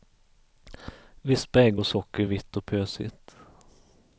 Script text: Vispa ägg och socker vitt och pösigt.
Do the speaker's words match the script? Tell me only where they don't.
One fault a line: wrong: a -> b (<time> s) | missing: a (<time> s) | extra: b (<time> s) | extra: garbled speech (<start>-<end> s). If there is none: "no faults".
no faults